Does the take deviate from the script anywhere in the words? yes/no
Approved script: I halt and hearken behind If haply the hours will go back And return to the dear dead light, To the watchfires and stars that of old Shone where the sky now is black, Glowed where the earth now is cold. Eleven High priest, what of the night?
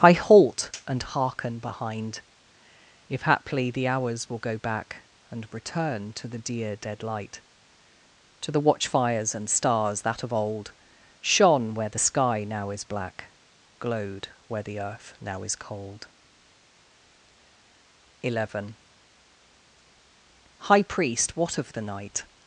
no